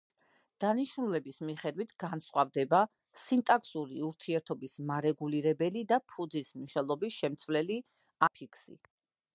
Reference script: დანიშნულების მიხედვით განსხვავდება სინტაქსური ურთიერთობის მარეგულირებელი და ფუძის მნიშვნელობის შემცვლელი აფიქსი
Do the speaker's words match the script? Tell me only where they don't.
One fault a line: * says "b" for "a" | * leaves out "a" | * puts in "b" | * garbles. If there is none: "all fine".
all fine